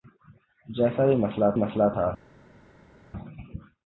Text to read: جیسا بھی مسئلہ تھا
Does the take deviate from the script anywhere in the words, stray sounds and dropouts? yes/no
yes